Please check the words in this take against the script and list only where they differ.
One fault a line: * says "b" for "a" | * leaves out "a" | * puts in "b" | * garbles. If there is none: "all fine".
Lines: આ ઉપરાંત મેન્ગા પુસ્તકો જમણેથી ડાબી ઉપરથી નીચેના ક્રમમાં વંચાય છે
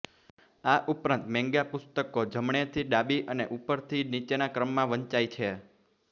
* puts in "અને"